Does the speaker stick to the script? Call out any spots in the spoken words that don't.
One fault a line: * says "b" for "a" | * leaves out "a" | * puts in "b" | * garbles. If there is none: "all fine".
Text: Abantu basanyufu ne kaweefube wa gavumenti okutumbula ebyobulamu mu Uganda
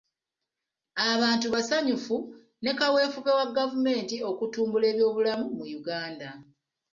all fine